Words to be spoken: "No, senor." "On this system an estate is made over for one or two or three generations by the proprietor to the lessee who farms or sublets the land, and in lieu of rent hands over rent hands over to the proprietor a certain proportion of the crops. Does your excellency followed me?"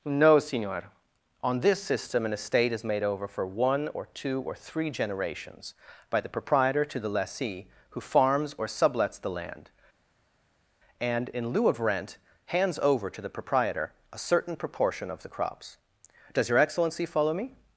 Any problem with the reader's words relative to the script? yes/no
yes